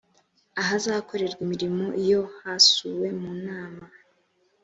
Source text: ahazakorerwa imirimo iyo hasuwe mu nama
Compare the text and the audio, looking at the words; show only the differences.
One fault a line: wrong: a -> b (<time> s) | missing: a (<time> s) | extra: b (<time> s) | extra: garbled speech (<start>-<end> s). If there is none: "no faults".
no faults